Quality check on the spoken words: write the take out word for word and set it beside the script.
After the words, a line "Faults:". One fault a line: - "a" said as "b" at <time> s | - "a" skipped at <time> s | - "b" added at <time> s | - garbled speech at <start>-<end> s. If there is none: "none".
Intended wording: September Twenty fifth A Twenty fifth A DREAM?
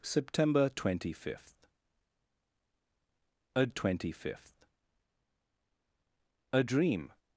September Twenty fifth A Twenty fifth A DREAM?
Faults:
none